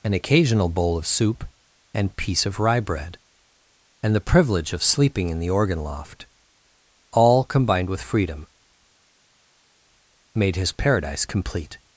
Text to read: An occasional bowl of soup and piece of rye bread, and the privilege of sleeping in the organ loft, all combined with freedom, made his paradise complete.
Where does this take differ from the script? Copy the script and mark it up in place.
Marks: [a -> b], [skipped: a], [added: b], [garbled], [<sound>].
An occasional bowl of soup and piece of rye bread, and the privilege of sleeping in the organ loft, all combined with freedom, made his paradise complete.